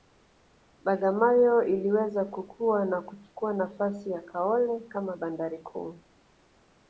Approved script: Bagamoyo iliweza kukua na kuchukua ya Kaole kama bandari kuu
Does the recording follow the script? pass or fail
fail